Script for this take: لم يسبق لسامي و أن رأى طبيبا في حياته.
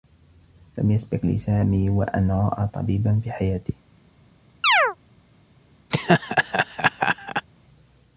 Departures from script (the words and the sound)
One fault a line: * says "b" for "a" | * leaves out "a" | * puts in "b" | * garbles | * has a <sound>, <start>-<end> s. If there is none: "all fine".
* has a chirp, 4.6-5.0 s
* has a laugh, 5.9-7.5 s